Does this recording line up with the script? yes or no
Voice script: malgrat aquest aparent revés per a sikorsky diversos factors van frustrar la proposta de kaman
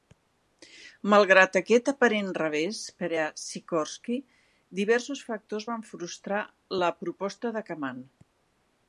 yes